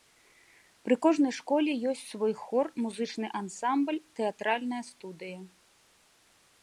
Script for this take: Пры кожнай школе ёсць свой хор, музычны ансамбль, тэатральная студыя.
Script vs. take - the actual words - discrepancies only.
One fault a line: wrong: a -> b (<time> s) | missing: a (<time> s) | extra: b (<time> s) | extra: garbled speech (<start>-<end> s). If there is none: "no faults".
no faults